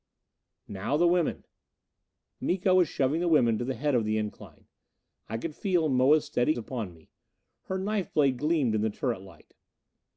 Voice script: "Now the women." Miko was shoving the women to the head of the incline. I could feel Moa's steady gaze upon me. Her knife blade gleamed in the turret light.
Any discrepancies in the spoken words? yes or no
yes